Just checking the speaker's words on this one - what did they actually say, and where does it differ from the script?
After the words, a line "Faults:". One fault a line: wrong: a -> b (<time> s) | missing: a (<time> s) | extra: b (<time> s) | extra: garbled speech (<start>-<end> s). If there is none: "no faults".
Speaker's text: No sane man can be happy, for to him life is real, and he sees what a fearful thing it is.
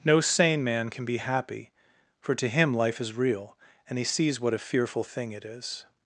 No sane man can be happy, for to him life is real, and he sees what a fearful thing it is.
Faults:
no faults